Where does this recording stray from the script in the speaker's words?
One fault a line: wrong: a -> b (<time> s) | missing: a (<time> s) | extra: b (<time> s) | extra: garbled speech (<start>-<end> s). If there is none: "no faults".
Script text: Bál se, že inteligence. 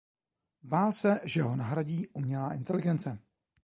extra: ho nahradí umělá (1.4 s)